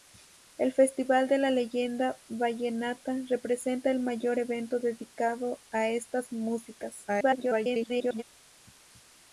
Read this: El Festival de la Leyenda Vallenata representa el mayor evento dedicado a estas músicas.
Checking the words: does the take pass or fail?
fail